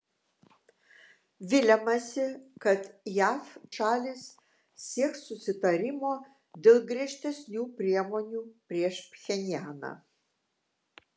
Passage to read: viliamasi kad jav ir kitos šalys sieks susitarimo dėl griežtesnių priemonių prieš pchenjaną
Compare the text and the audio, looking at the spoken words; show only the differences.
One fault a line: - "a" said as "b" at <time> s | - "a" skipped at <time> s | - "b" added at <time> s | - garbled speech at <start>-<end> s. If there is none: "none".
- "ir kitos" skipped at 3.5 s